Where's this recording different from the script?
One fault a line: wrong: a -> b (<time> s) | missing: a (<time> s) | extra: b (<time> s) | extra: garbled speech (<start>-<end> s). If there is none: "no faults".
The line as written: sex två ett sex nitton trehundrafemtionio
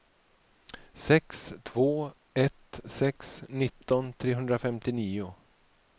no faults